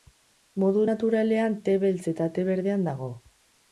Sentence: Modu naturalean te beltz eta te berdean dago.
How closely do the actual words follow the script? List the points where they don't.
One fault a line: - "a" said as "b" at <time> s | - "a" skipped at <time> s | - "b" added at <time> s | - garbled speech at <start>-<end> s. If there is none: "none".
none